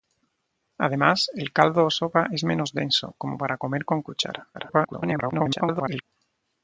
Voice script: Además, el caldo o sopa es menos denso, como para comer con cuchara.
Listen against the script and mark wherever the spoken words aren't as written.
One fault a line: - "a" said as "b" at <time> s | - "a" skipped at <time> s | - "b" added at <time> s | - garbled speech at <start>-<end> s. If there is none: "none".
- garbled speech at 4.5-6.0 s